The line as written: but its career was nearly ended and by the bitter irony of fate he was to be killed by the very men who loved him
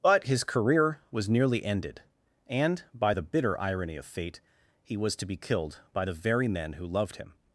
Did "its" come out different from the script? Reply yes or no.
yes